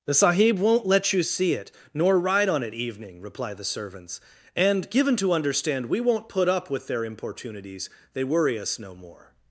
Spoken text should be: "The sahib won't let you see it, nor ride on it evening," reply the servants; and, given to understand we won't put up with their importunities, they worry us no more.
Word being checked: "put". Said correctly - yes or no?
yes